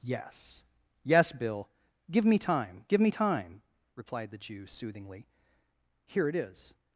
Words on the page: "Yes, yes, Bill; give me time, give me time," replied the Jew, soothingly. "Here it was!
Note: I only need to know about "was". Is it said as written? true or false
false